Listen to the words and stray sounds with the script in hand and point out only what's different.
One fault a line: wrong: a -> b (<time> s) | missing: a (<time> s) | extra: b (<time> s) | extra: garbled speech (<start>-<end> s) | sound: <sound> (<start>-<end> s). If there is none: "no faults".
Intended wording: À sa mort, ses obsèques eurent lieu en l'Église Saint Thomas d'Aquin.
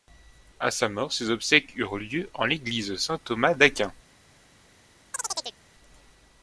sound: chirp (5.1-5.6 s)